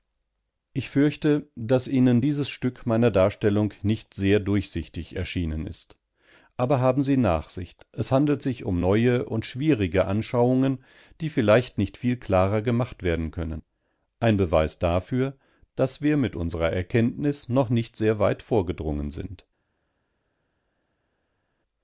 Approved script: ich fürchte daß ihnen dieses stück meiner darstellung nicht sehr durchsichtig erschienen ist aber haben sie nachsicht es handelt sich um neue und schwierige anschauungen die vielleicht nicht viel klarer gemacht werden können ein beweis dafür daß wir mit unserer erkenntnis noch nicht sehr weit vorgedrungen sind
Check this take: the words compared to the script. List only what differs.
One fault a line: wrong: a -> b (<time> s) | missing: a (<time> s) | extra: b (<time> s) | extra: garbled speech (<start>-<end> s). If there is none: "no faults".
no faults